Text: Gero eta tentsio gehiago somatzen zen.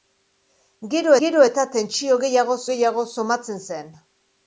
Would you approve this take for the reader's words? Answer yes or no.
no